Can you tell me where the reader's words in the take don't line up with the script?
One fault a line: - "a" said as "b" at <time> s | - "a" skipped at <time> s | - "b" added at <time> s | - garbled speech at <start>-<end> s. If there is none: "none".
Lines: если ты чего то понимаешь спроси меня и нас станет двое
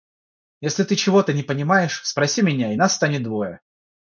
- "не" added at 1.3 s